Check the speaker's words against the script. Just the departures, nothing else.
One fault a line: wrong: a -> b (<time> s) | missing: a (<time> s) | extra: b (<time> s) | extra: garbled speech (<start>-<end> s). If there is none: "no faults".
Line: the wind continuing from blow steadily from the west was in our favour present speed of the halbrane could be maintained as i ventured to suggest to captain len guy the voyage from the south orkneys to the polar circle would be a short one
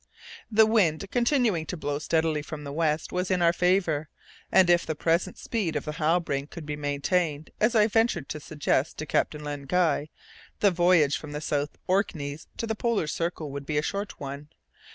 wrong: from -> to (1.7 s)
extra: and if the (4.5 s)